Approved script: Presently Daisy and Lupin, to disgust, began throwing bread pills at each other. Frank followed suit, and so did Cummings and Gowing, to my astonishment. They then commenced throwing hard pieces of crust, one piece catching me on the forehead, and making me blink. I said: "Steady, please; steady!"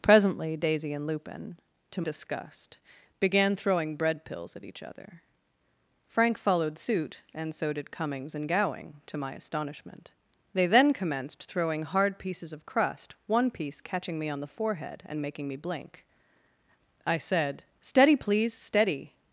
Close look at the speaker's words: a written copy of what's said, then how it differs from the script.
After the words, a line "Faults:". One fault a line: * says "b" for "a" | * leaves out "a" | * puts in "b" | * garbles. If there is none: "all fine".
Presently Daisy and Lupin, to disgust, began throwing bread pills at each other. Frank followed suit, and so did Cummings and Gowing, to my astonishment. They then commenced throwing hard pieces of crust, one piece catching me on the forehead, and making me blink. I said: "Steady, please; steady!"
Faults:
all fine